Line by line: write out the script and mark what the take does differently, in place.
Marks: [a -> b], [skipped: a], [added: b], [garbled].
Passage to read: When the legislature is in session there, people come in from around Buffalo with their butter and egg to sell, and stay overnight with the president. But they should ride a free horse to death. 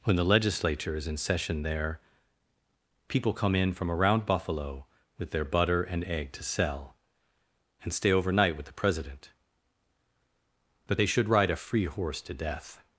When the legislature is in session there, people come in from around Buffalo with their butter and egg to sell, and stay overnight with the president. But they should ride a free horse to death.